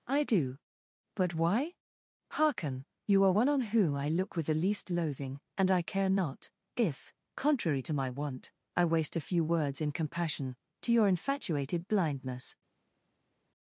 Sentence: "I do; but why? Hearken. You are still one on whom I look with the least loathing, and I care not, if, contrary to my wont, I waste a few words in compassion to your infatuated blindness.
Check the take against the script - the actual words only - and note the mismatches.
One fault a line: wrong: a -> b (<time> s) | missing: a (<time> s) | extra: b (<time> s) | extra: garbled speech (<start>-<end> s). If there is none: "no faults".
missing: still (3.3 s)